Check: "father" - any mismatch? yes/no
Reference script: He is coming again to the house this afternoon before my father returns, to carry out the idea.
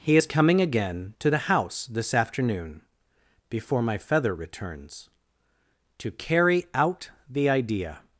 yes